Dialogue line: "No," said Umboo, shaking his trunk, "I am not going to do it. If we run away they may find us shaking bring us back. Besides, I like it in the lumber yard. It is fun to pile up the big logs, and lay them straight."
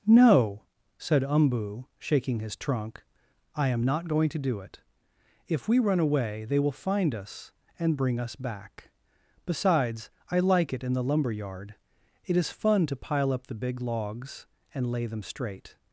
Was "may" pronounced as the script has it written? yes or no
no